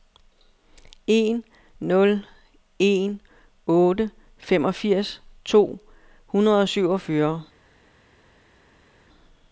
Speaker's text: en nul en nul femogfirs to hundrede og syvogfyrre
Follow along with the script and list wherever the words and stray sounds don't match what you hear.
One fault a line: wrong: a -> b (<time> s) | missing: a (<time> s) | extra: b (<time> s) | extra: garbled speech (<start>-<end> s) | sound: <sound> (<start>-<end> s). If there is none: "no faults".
wrong: nul -> otte (3.7 s)